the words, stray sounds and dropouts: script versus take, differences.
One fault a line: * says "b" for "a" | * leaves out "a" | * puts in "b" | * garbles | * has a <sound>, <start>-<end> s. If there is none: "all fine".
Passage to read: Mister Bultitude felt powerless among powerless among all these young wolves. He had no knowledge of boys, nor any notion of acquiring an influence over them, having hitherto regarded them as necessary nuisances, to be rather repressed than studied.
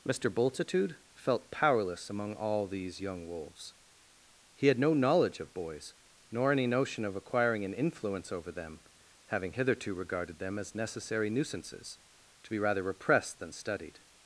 * leaves out "powerless among"